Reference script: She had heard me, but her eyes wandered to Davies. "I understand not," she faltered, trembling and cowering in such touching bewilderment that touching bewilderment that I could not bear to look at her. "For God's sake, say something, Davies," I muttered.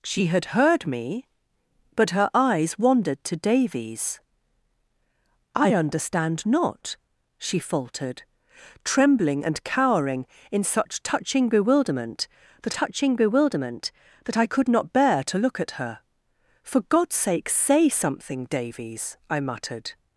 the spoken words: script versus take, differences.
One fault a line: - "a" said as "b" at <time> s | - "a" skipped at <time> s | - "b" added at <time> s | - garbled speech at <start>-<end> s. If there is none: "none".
none